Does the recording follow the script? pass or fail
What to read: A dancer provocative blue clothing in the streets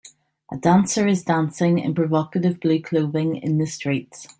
fail